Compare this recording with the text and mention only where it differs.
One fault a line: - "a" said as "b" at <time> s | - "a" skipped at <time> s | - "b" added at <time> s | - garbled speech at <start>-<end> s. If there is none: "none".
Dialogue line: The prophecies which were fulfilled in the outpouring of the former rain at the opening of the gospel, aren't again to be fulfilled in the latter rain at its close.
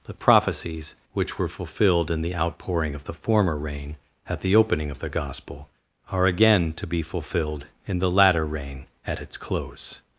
- "aren't" said as "are" at 6.1 s